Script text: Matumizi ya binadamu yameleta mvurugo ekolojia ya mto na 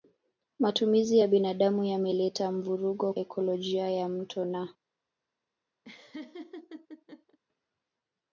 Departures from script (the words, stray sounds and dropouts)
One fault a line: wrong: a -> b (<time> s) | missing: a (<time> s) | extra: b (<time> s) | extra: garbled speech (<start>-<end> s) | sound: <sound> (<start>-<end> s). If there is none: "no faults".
sound: laugh (5.8-7.4 s)